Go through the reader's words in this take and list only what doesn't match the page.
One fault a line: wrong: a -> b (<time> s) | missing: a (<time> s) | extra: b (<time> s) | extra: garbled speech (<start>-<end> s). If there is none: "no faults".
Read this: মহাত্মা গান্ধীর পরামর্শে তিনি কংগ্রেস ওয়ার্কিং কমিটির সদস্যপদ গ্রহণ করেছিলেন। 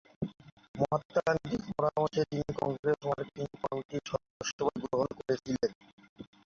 no faults